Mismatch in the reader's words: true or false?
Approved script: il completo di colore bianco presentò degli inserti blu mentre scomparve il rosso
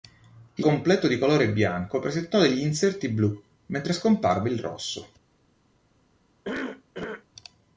false